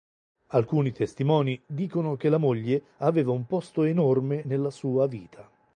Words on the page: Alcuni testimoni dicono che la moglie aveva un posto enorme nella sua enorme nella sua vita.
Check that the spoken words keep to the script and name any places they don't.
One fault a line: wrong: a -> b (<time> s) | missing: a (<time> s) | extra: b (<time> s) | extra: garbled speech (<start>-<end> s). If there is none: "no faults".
missing: enorme nella sua (5.1 s)